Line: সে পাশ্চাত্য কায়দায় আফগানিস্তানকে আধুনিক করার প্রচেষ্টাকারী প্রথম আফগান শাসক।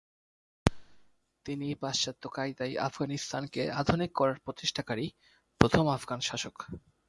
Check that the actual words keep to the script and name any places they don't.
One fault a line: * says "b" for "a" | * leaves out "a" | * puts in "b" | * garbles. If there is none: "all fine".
* says "তিনি" for "সে"